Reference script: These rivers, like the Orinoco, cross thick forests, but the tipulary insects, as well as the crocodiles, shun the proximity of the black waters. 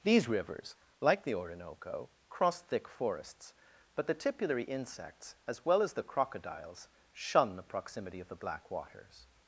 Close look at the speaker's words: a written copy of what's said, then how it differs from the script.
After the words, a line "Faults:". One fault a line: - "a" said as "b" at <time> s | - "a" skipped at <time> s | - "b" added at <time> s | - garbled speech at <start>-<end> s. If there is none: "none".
These rivers, like the Orinoco, cross thick forests, but the tipulary insects, as well as the crocodiles, shun the proximity of the black waters.
Faults:
none